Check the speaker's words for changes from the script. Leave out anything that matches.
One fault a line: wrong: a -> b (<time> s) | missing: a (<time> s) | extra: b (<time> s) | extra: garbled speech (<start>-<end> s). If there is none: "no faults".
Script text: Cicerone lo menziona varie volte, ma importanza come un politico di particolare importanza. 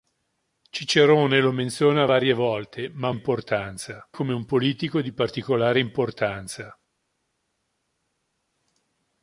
no faults